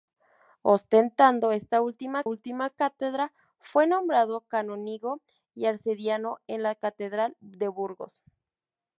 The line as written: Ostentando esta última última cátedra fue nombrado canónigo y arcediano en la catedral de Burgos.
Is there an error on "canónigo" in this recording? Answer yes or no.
no